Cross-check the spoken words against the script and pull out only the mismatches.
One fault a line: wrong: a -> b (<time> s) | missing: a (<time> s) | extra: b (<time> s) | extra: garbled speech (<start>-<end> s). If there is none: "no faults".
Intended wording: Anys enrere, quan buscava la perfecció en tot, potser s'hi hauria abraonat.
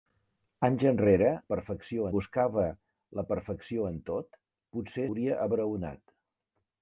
wrong: quan -> perfecció (1.5 s)
missing: s'hi (5.1 s)